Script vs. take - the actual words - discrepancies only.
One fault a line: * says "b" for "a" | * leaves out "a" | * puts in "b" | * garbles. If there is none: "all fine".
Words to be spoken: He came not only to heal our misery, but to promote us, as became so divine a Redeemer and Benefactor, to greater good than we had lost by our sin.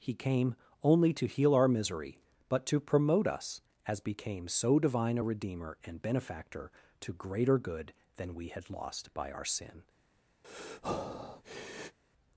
* leaves out "not"